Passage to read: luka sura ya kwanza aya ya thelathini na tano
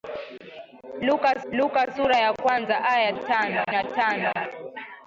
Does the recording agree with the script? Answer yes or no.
no